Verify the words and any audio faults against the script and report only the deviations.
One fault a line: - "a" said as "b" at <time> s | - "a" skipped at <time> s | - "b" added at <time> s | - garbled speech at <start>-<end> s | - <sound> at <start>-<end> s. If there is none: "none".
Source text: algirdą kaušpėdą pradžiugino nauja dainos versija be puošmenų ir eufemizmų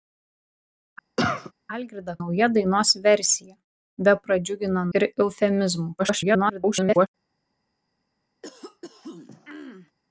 - cough at 1.2-1.5 s
- "kaušpėdą pradžiugino" skipped at 2.1 s
- "puošmenų" said as "pradžiugino" at 4.2 s
- garbled speech at 6.0-7.1 s
- throat clearing at 8.4-9.9 s